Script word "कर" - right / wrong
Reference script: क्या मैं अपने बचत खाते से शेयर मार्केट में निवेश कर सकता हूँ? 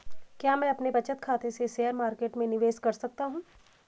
right